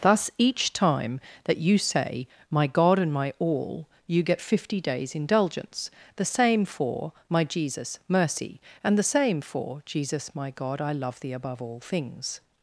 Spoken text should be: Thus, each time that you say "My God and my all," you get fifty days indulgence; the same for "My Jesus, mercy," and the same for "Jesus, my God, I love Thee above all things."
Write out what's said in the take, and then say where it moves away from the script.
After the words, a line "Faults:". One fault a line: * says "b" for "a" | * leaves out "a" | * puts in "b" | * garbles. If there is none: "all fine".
Thus, each time that you say "My God and my all," you get fifty days indulgence; the same for "My Jesus, mercy," and the same for "Jesus, my God, I love Thee above all things."
Faults:
all fine